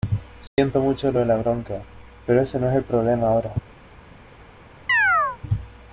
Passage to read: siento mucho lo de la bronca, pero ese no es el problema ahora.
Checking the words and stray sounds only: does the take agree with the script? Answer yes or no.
no